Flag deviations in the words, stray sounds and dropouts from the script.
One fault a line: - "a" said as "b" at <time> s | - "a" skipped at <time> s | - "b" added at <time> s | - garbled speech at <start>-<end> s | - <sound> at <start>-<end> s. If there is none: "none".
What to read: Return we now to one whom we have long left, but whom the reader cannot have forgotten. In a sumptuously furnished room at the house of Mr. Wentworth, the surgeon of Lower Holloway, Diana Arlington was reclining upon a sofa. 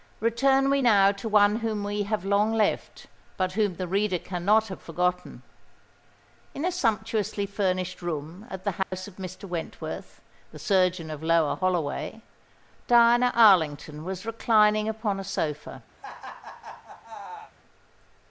- dropout at 8.8-8.9 s
- laugh at 16.0-17.5 s